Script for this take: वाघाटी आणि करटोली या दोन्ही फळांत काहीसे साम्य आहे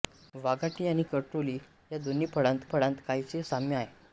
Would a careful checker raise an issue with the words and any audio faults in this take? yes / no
yes